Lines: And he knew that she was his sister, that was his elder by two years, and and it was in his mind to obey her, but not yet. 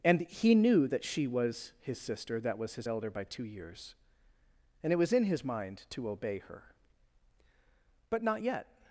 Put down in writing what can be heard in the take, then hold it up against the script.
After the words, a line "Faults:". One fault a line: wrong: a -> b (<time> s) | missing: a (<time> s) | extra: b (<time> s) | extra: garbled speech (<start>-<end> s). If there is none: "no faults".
And he knew that she was his sister, that was his elder by two years, and it was in his mind to obey her, but not yet.
Faults:
missing: and (4.9 s)